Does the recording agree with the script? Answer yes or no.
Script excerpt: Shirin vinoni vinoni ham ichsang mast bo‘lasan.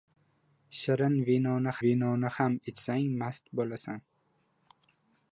yes